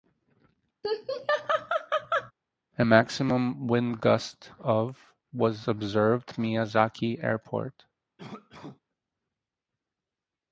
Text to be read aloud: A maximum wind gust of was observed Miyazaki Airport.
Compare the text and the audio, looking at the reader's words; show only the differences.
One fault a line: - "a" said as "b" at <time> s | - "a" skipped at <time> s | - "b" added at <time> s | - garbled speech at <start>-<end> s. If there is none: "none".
none